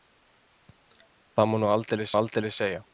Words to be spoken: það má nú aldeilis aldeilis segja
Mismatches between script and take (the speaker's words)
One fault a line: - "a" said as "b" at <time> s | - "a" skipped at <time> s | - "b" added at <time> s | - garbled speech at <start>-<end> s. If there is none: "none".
none